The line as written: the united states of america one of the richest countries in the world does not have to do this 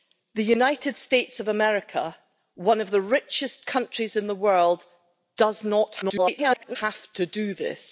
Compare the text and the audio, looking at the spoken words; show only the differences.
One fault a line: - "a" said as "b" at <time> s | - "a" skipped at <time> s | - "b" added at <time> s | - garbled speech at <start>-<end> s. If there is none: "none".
- garbled speech at 6.0-6.8 s